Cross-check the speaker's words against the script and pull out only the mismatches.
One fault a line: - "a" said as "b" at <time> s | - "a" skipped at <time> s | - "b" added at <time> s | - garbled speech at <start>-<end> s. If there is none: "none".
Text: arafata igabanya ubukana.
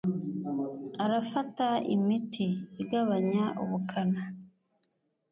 - "imiti" added at 1.9 s